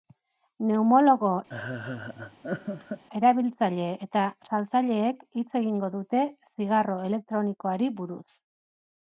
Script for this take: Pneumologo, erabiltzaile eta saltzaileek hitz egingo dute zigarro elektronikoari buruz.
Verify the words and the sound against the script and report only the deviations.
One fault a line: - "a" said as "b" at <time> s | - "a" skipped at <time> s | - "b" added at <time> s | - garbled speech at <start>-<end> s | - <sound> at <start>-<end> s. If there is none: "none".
- laugh at 1.5-3.0 s